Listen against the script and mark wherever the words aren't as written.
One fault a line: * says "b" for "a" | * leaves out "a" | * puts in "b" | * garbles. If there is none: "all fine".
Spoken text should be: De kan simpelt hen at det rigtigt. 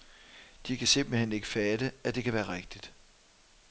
* puts in "ikke fatte"
* puts in "kan være"